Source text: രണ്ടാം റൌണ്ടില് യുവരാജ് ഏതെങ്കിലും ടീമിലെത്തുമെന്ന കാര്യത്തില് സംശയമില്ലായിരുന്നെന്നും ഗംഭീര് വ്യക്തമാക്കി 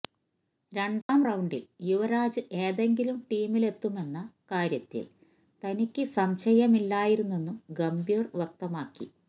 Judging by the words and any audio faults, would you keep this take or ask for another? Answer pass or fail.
fail